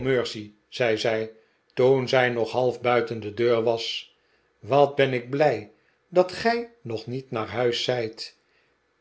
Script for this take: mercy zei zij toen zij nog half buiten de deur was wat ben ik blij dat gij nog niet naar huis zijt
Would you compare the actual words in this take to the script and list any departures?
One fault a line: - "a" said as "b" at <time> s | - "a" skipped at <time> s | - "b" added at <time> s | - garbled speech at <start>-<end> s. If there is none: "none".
none